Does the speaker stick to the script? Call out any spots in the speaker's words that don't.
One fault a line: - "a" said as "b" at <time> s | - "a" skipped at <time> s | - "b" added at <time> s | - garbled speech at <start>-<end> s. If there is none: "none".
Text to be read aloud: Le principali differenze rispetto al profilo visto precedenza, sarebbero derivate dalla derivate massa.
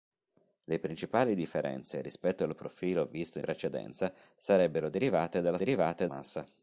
none